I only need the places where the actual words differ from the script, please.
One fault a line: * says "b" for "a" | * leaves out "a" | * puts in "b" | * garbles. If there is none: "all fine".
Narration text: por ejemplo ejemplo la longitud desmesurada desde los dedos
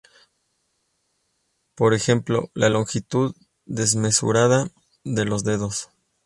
* leaves out "ejemplo"
* says "de" for "desde"